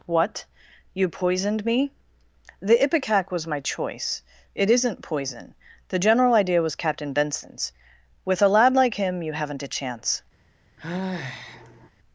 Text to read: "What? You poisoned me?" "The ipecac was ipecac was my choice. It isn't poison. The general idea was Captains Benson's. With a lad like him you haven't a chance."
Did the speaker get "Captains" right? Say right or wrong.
wrong